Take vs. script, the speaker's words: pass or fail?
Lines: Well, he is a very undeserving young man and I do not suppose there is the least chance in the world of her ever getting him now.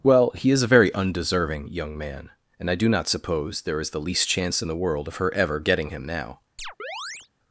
pass